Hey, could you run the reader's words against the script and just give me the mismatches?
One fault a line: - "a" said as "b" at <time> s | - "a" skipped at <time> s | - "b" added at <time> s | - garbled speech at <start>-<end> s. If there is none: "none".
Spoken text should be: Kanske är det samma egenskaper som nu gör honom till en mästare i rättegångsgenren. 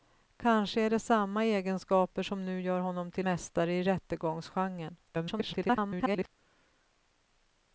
- "en" skipped at 3.3 s
- garbled speech at 5.1-6.3 s